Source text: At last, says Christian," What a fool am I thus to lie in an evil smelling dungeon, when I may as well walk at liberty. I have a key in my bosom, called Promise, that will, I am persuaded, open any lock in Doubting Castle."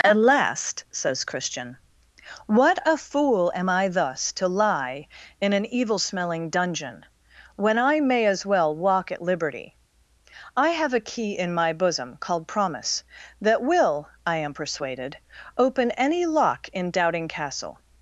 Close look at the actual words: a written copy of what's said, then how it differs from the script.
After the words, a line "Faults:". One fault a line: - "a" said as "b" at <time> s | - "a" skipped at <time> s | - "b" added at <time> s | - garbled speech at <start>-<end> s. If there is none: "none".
At last, says Christian," What a fool am I thus to lie in an evil smelling dungeon, when I may as well walk at liberty. I have a key in my bosom, called Promise, that will, I am persuaded, open any lock in Doubting Castle."
Faults:
none